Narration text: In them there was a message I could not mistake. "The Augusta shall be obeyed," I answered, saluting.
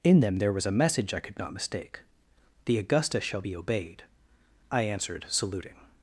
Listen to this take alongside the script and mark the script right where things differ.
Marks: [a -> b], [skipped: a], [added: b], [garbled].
In them there was a message I could not mistake. "The Augusta shall be obeyed," I answered, saluting.